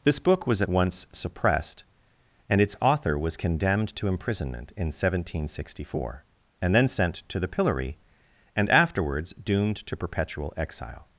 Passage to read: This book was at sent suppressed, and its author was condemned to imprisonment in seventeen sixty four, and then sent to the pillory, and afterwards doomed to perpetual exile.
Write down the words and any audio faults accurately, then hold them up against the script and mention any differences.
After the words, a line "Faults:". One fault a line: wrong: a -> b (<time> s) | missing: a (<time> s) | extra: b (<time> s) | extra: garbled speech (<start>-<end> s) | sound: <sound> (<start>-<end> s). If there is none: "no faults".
This book was at once suppressed, and its author was condemned to imprisonment in seventeen sixty four, and then sent to the pillory, and afterwards doomed to perpetual exile.
Faults:
wrong: sent -> once (0.7 s)